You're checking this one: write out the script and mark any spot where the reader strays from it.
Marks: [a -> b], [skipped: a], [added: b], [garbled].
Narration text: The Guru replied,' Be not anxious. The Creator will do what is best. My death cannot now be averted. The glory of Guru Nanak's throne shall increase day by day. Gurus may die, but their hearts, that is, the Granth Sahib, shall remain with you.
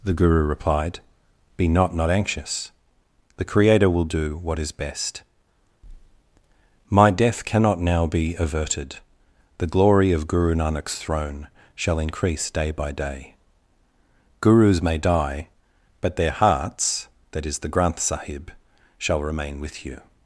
The Guru replied,' Be not [added: not] anxious. The Creator will do what is best. My death cannot now be averted. The glory of Guru Nanak's throne shall increase day by day. Gurus may die, but their hearts, that is, the Granth Sahib, shall remain with you.